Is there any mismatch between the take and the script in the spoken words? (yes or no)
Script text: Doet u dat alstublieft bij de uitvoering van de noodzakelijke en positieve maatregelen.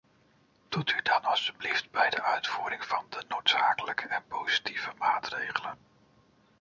no